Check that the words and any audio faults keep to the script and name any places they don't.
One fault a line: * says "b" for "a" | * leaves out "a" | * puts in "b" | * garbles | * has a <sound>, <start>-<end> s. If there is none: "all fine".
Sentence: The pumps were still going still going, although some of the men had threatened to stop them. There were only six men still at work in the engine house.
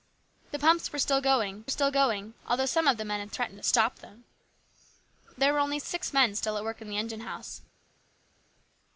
all fine